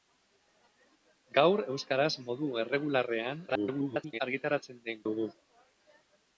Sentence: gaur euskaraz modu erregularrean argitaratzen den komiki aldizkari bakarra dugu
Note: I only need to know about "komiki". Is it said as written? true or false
false